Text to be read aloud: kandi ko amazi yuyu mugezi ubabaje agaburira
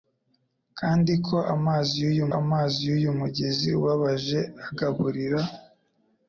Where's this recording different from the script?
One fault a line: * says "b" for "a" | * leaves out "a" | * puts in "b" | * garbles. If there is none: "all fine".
* puts in "amazi yuyu"